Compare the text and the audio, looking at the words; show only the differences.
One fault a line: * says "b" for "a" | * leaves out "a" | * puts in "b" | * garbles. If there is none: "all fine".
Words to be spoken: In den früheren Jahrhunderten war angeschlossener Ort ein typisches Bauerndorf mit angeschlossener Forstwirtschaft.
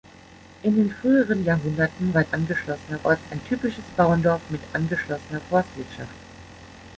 all fine